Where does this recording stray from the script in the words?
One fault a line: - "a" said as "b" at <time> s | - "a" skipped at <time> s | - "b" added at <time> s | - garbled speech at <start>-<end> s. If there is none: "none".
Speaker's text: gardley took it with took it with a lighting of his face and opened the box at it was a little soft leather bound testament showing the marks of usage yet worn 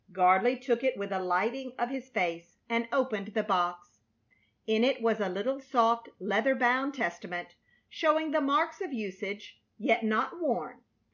- "took it with" skipped at 1.1 s
- "at" said as "in" at 4.7 s
- "not" added at 10.0 s